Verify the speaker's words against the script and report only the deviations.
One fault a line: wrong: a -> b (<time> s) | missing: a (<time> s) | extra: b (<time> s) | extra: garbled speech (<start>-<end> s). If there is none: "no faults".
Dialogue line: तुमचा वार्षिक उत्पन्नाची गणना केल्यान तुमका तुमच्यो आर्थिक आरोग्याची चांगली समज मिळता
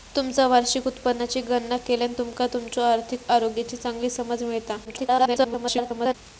extra: garbled speech (4.8-6.1 s)